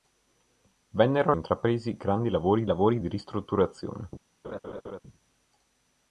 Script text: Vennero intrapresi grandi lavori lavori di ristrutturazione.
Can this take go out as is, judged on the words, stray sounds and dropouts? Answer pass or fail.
fail